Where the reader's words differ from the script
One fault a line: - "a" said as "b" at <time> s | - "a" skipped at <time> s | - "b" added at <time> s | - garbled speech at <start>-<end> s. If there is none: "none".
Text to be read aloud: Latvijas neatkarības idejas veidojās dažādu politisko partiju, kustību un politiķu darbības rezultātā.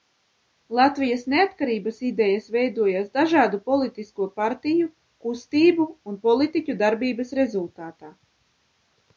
none